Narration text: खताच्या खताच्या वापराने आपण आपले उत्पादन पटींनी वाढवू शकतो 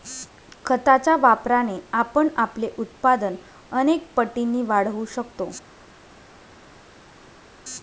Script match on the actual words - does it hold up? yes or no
no